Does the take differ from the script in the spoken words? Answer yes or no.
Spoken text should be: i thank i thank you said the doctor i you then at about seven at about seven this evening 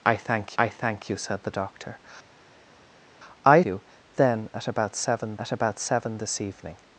no